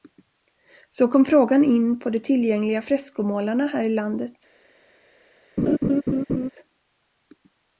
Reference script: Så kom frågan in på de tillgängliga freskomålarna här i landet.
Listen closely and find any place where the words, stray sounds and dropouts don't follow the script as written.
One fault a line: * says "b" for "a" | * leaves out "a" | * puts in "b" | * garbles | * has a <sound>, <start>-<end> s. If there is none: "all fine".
* has a laugh, 5.6-6.5 s